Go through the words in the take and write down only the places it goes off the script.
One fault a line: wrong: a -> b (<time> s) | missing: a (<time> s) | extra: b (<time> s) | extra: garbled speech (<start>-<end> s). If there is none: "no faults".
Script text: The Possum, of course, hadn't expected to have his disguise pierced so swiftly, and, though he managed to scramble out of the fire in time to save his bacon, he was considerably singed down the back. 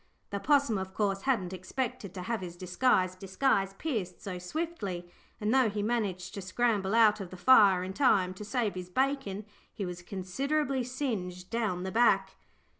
extra: disguise (3.2 s)